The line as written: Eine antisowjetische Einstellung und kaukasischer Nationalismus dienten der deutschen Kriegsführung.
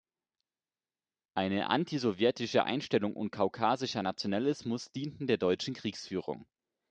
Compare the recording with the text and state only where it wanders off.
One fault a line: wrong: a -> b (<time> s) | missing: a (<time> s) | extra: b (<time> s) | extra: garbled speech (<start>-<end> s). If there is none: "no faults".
no faults